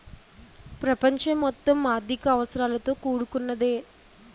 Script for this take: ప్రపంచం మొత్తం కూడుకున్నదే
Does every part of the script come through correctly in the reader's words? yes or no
no